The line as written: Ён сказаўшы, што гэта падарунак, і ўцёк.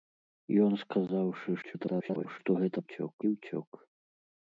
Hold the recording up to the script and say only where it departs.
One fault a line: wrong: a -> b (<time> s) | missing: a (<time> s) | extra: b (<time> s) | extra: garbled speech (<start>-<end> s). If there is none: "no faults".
extra: garbled speech (1.6-2.4 s)
wrong: падарунак -> ўцёк (2.8 s)